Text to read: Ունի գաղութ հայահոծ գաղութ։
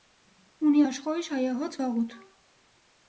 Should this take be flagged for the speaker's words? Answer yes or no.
yes